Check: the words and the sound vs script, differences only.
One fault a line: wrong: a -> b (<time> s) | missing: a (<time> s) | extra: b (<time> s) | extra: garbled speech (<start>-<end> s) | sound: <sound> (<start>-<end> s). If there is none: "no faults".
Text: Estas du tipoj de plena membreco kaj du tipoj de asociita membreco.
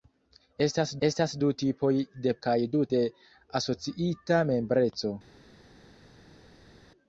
extra: estas (1.1 s)
missing: plena membreco (2.3 s)
missing: tipoj (2.9 s)